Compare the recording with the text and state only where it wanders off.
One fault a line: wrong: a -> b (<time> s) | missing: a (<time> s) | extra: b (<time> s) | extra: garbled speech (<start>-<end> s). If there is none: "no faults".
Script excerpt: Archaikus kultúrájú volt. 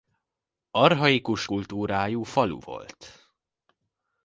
extra: falu (2.2 s)